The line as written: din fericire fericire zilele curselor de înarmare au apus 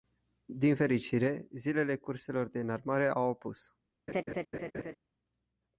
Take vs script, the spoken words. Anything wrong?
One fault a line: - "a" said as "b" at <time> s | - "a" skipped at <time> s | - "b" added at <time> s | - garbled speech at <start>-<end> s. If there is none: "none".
- "fericire" skipped at 1.5 s